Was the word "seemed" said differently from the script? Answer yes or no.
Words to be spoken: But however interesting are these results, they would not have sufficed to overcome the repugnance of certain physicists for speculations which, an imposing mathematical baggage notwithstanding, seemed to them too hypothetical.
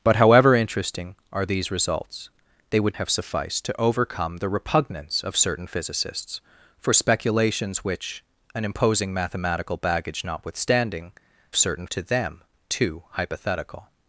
yes